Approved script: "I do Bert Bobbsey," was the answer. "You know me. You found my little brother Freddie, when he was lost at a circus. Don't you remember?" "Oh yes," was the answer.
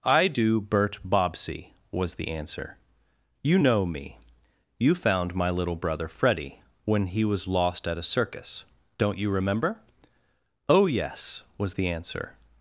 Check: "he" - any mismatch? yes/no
no